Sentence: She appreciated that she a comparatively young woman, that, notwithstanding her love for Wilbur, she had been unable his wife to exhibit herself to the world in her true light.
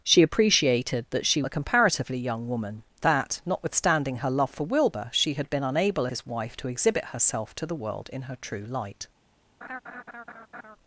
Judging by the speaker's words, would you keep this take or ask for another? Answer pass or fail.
pass